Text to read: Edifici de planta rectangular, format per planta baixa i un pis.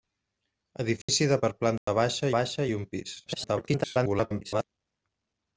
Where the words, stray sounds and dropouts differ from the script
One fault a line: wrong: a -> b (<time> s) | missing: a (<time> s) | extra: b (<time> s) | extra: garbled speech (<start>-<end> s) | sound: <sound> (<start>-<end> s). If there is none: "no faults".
sound: dropout (1.0-1.1 s)
missing: planta rectangular format (1.4 s)
sound: dropout (1.8-1.9 s)
extra: baixa (2.4 s)
extra: garbled speech (3.3-4.6 s)